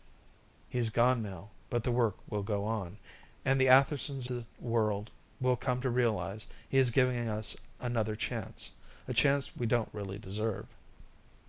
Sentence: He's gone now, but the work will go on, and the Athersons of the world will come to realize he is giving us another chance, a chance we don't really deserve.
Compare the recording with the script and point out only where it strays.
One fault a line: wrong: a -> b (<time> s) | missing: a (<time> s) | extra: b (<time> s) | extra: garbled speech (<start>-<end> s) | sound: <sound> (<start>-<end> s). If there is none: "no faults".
missing: of (4.3 s)